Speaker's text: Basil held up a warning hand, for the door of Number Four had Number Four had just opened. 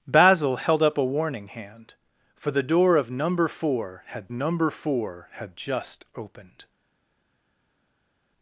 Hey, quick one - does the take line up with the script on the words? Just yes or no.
yes